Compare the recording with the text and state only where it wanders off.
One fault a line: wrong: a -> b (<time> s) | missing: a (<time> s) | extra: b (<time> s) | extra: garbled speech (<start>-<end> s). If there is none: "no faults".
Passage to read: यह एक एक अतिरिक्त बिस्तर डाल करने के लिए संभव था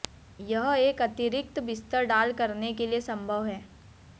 missing: एक (1.0 s)
wrong: था -> है (3.5 s)